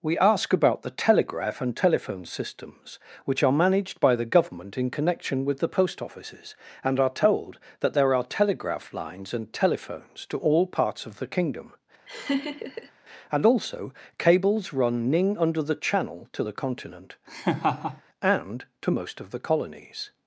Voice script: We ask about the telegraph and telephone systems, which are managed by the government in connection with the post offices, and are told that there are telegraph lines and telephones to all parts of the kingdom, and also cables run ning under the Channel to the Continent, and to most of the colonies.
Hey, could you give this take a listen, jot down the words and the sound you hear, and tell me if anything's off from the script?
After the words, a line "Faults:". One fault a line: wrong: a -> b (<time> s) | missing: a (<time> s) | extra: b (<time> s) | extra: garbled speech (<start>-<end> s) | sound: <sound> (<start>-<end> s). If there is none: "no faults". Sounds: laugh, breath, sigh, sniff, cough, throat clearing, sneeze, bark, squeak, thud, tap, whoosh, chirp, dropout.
We ask about the telegraph and telephone systems, which are managed by the government in connection with the post offices, and are told that there are telegraph lines and telephones to all parts of the kingdom, and also cables run ning under the Channel to the Continent, and to most of the colonies.
Faults:
sound: laugh (12.1-12.9 s)
sound: laugh (17.3-18.0 s)